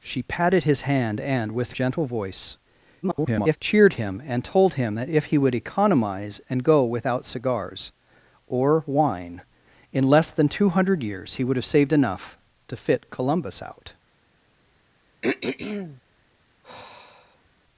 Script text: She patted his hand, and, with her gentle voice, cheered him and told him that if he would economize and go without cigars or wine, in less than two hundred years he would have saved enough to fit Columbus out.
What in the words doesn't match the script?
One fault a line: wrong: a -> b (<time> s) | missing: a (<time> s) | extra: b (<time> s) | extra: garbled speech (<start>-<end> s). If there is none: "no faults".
missing: her (1.7 s)
extra: garbled speech (3.0-3.6 s)